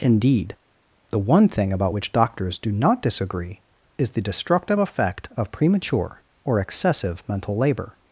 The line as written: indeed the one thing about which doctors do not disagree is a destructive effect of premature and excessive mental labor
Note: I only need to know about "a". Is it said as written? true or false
false